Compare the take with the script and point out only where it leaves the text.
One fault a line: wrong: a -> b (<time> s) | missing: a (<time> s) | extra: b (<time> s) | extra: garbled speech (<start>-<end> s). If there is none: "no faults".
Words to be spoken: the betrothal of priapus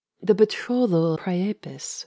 missing: of (1.2 s)